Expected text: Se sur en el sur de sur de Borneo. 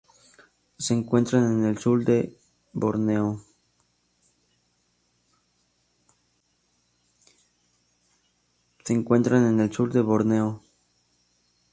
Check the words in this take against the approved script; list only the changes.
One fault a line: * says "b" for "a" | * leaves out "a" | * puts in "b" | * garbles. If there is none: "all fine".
* says "encuentran" for "sur"
* leaves out "sur de"